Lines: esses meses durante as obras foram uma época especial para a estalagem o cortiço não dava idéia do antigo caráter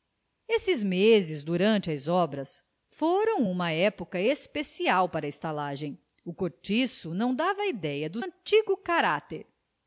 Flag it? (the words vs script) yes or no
no